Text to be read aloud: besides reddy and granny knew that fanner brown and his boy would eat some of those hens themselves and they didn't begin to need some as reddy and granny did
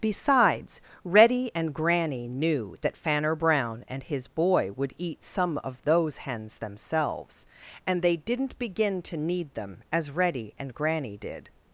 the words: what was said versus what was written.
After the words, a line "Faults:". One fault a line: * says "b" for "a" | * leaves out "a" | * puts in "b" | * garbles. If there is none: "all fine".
besides reddy and granny knew that fanner brown and his boy would eat some of those hens themselves and they didn't begin to need them as reddy and granny did
Faults:
* says "them" for "some"